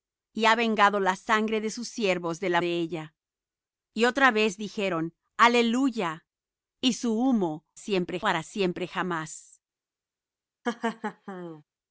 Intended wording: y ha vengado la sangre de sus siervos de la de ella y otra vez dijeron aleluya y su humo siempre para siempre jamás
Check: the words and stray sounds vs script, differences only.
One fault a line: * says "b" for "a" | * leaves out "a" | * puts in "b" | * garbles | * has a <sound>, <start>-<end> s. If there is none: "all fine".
* has a laugh, 10.6-11.6 s